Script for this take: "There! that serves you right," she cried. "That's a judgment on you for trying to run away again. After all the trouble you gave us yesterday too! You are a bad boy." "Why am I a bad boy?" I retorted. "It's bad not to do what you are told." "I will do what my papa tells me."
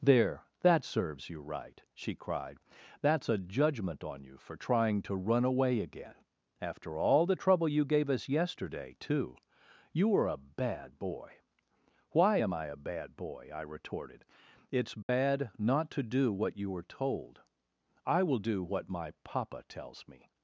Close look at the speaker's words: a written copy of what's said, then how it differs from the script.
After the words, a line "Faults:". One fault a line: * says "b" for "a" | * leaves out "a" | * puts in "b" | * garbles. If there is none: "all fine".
"There! that serves you right," she cried. "That's a judgment on you for trying to run away again. After all the trouble you gave us yesterday too! You were a bad boy." "Why am I a bad boy?" I retorted. "It's bad not to do what you were told." "I will do what my papa tells me."
Faults:
* says "were" for "are"
* says "were" for "are"